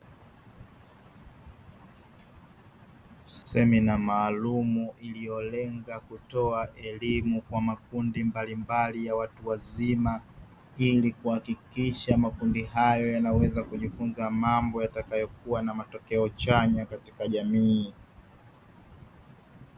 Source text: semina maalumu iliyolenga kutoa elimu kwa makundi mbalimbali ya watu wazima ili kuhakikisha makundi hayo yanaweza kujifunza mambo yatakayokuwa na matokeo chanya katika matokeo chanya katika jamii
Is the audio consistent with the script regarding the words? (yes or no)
no